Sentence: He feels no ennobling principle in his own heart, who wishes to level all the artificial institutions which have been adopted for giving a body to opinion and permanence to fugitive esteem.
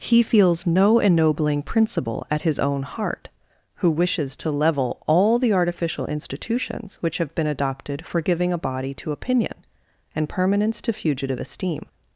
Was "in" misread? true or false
true